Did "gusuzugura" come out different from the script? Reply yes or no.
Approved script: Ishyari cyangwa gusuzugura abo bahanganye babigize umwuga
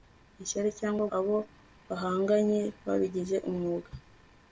yes